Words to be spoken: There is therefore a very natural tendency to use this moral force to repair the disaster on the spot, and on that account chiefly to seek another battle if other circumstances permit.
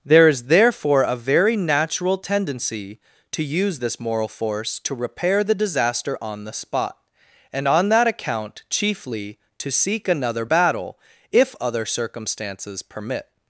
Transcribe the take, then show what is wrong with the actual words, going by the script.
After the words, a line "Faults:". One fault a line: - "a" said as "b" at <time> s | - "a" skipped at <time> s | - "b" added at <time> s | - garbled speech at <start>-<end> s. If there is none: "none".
There is therefore a very natural tendency to use this moral force to repair the disaster on the spot, and on that account chiefly to seek another battle if other circumstances permit.
Faults:
none